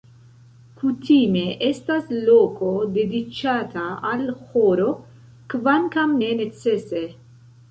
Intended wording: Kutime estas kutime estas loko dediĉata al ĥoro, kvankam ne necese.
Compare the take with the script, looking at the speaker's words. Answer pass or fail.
fail